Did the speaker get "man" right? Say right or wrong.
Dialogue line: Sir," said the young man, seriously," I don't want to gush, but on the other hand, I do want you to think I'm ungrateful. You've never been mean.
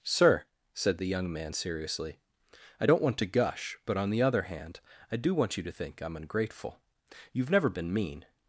right